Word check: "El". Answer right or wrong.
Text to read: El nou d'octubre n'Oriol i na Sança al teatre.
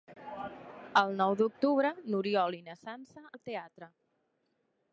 right